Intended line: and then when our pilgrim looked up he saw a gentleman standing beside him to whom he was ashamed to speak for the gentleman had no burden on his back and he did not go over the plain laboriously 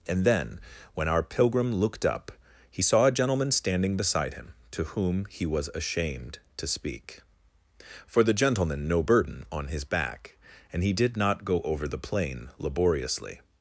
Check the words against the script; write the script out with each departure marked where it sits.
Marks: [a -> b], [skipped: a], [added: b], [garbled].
and then when our pilgrim looked up he saw a gentleman standing beside him to whom he was ashamed to speak for the gentleman [skipped: had] no burden on his back and he did not go over the plain laboriously